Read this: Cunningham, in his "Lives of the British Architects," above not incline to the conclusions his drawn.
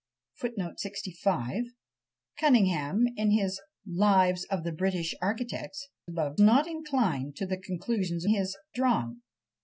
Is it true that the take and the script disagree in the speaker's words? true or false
false